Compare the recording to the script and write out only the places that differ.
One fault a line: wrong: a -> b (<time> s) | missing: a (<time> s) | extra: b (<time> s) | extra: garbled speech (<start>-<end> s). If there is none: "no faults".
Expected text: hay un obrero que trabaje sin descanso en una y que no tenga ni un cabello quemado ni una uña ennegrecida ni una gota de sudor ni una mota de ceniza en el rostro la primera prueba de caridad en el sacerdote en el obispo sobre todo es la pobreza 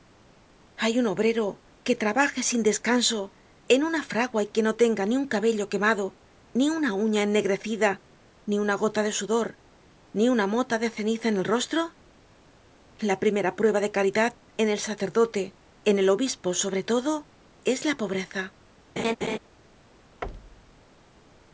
extra: fragua (4.0 s)